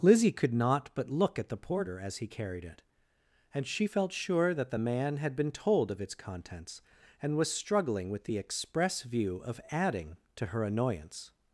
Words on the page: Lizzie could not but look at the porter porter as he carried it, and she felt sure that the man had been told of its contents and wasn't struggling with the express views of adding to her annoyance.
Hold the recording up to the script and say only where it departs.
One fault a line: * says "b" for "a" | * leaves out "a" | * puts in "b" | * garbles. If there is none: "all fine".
* leaves out "porter"
* says "was" for "wasn't"
* says "view" for "views"